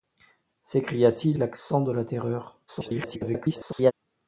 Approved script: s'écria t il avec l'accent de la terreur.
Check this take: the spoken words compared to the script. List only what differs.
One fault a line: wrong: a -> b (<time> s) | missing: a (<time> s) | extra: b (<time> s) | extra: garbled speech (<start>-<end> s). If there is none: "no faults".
missing: avec (1.4 s)
extra: garbled speech (2.7-3.9 s)